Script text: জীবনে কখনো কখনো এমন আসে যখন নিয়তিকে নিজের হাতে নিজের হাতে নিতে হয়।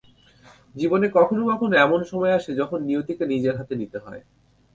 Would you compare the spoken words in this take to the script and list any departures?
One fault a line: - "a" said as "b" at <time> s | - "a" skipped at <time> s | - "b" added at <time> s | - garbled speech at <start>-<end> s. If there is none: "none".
- "সময়" added at 2.1 s
- "নিজের হাতে" skipped at 3.7 s